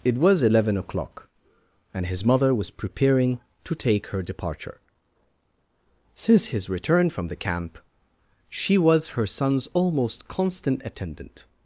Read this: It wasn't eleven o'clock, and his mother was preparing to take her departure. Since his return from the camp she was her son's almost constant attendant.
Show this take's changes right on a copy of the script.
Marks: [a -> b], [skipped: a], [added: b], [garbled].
It [wasn't -> was] eleven o'clock, and his mother was preparing to take her departure. Since his return from the camp she was her son's almost constant attendant.